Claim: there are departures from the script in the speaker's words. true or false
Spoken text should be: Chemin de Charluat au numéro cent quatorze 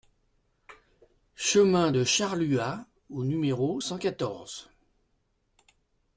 false